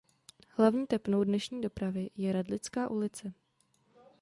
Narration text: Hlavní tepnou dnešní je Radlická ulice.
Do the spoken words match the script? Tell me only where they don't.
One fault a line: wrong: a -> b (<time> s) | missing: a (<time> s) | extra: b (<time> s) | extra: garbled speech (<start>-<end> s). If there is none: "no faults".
extra: dopravy (1.6 s)